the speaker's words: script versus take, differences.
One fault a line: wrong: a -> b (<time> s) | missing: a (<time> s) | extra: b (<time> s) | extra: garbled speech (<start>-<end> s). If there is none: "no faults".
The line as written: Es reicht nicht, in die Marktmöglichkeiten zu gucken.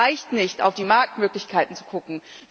wrong: in -> auf (0.6 s)